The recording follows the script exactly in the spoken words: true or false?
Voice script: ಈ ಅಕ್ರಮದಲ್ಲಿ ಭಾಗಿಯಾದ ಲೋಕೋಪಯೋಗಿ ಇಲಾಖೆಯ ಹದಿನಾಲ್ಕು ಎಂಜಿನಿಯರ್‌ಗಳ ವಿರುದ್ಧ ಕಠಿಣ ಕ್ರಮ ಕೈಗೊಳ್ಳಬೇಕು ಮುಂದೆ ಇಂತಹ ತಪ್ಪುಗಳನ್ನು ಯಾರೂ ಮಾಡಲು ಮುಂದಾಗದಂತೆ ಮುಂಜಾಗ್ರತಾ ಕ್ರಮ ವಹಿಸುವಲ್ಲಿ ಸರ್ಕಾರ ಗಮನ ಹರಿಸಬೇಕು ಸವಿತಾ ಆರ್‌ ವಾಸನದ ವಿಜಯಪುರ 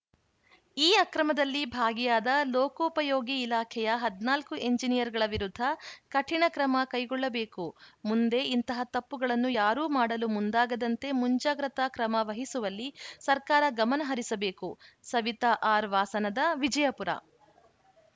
true